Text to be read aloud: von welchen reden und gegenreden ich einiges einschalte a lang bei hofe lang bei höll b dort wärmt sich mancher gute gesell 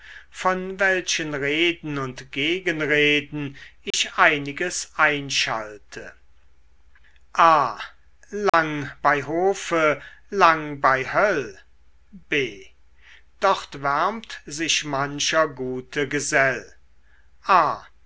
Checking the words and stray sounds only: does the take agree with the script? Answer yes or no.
no